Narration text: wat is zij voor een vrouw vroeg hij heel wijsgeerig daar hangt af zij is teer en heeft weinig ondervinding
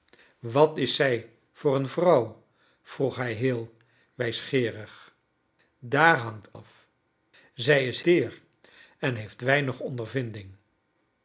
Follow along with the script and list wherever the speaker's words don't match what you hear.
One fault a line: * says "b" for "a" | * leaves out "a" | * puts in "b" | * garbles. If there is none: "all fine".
all fine